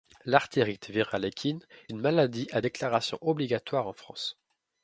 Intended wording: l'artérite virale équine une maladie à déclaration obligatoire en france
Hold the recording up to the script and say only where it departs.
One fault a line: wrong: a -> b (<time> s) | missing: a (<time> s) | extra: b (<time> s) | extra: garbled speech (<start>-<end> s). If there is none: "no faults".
no faults